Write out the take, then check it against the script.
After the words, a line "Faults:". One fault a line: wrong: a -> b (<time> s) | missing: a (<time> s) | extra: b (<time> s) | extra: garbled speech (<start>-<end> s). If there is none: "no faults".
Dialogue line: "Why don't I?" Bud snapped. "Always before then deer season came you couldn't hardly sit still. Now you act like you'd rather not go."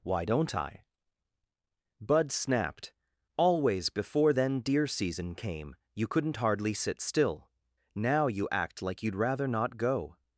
"Why don't I?" Bud snapped. "Always before then deer season came you couldn't hardly sit still. Now you act like you'd rather not go."
Faults:
no faults